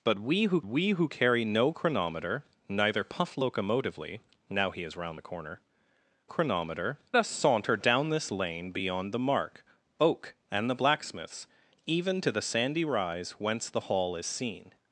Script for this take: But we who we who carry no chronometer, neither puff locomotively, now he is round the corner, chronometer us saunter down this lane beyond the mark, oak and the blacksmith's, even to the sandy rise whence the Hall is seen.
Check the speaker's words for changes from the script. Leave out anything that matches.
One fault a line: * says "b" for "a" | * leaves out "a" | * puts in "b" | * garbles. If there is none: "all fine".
all fine